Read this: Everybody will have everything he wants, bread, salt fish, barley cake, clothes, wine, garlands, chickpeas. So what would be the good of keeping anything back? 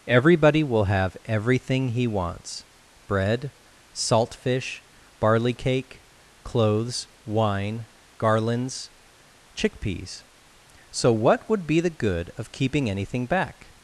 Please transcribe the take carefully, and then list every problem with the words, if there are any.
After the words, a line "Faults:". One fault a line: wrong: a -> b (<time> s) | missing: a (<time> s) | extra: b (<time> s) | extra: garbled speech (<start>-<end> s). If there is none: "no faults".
Everybody will have everything he wants, bread, salt fish, barley cake, clothes, wine, garlands, chickpeas. So what would be the good of keeping anything back?
Faults:
no faults